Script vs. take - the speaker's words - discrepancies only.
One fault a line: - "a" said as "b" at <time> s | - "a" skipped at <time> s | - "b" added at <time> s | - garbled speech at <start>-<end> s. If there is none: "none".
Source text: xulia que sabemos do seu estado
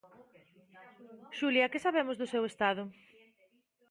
none